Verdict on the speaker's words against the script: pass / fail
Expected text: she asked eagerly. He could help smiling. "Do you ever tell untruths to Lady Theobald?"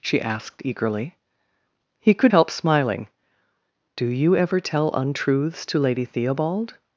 pass